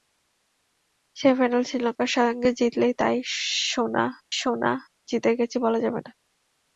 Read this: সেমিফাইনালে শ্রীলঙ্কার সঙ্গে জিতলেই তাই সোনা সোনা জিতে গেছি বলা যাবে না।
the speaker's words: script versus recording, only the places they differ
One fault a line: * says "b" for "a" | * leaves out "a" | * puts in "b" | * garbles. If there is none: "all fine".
all fine